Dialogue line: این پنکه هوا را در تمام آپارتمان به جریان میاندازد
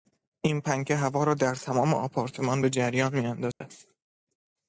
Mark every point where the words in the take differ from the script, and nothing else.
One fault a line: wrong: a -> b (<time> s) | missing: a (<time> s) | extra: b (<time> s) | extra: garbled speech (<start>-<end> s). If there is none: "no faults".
no faults